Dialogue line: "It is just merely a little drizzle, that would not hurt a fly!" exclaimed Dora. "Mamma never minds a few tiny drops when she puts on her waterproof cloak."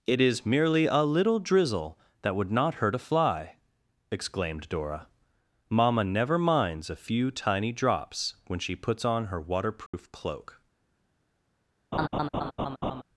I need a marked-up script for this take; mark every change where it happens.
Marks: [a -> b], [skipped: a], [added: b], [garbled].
"It is [skipped: just] merely a little drizzle, that would not hurt a fly!" exclaimed Dora. "Mamma never minds a few tiny drops when she puts on her waterproof cloak."